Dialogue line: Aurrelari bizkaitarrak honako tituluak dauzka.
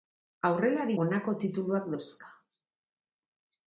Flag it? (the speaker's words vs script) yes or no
yes